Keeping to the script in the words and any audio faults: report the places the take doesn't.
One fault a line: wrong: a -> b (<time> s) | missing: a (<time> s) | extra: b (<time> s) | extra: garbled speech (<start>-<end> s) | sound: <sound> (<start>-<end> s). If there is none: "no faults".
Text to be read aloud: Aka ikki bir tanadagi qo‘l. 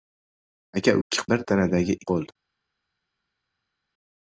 no faults